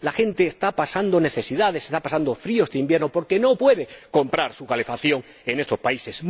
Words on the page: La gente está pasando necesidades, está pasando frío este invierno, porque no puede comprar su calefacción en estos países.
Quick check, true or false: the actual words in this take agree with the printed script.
true